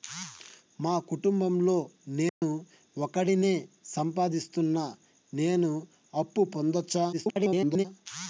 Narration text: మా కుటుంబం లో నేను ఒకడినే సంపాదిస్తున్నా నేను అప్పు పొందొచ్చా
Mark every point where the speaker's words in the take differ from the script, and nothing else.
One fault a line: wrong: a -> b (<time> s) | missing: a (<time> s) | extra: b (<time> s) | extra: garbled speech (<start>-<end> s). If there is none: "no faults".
extra: garbled speech (7.1-7.9 s)